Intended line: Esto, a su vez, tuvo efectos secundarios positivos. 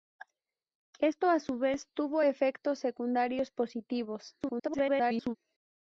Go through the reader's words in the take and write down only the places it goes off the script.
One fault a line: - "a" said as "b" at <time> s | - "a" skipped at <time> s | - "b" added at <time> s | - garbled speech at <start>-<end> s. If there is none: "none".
- garbled speech at 4.4-5.4 s